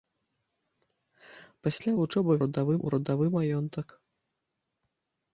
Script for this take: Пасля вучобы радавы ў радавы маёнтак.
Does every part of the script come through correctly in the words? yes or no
yes